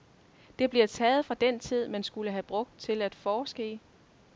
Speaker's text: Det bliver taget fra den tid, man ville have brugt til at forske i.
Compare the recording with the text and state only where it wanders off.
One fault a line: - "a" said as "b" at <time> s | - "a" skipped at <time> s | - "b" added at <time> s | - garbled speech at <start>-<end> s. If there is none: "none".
- "ville" said as "skulle" at 2.0 s